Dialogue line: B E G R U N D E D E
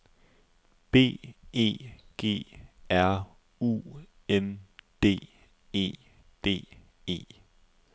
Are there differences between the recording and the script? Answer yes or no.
no